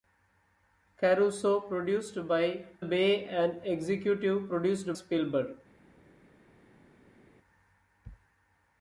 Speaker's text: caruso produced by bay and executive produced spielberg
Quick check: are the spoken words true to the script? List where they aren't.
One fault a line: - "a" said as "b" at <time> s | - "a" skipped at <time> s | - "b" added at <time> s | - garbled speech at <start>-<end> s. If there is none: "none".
none